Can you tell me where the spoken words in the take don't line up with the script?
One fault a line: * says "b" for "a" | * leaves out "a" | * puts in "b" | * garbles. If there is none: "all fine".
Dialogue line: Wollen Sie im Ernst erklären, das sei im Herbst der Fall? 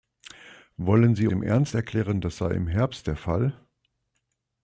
all fine